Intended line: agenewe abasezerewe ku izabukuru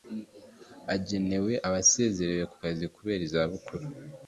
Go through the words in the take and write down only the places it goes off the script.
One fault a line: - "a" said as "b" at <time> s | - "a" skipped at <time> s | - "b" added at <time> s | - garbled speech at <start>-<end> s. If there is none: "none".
- "kazi kubera" added at 2.6 s